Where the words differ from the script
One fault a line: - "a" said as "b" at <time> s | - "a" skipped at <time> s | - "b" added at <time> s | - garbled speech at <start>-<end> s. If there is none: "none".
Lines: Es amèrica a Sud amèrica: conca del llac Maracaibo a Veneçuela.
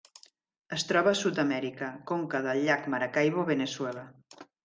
- "amèrica" said as "troba" at 0.9 s